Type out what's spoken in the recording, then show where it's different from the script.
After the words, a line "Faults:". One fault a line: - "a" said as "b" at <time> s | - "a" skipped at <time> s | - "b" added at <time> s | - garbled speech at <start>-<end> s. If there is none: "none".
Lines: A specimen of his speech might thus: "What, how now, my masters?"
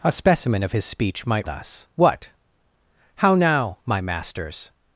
A specimen of his speech might thus: "What, how now, my masters?"
Faults:
none